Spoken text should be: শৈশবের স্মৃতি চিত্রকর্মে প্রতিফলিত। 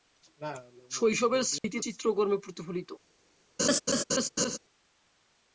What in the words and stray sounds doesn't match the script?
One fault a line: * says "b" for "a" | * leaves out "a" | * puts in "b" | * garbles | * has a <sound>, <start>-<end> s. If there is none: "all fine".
* has a dropout, 1.6-1.6 s
* has a laugh, 3.6-4.6 s